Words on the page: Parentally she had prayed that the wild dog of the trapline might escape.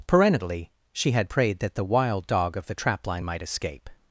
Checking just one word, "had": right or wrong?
right